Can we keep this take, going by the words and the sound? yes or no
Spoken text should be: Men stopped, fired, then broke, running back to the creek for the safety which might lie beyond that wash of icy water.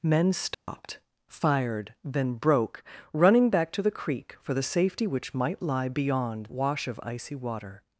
no